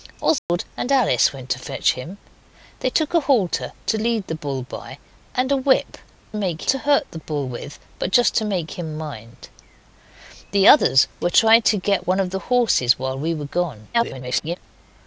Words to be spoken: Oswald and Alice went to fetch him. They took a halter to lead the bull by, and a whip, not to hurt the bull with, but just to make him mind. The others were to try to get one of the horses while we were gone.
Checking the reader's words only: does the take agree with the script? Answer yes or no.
no